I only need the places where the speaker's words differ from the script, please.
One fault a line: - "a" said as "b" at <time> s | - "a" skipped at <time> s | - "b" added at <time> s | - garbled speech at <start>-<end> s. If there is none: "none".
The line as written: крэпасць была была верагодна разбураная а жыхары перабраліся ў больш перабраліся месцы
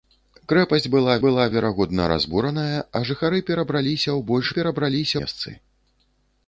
none